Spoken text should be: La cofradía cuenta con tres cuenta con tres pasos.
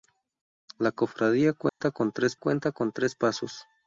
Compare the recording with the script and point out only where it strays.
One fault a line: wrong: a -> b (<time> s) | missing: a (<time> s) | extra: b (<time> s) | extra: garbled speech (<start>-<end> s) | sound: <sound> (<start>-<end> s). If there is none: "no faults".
sound: dropout (1.7-1.8 s)